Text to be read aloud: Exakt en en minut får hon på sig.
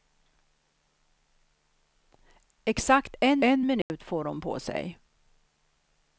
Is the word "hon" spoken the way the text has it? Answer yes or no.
yes